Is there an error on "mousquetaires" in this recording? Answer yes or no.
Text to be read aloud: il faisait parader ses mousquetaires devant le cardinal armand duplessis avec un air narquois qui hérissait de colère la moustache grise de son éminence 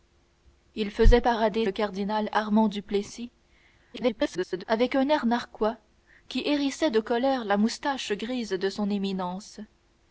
yes